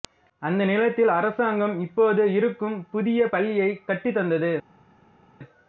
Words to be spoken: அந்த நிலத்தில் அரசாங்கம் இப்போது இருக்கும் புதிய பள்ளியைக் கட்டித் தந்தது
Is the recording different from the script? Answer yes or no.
no